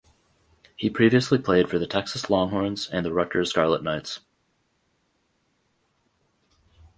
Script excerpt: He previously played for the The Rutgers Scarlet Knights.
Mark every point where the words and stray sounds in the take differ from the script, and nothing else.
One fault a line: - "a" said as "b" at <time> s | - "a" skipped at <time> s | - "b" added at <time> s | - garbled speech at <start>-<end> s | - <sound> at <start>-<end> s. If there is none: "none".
- "Texas Longhorns and" added at 1.9 s